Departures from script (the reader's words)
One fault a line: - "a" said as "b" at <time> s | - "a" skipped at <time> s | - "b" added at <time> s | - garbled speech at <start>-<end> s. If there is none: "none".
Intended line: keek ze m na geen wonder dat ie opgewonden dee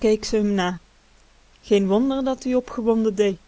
none